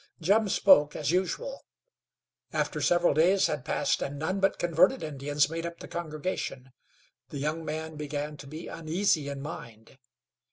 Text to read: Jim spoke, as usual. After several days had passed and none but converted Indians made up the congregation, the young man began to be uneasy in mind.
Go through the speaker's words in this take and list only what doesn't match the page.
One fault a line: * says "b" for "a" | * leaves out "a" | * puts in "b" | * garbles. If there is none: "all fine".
all fine